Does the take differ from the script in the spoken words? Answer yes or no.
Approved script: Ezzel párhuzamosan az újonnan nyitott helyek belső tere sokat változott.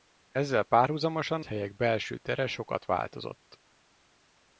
yes